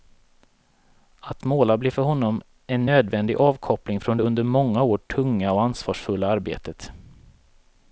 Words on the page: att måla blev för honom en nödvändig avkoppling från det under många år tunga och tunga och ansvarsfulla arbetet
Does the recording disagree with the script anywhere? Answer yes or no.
yes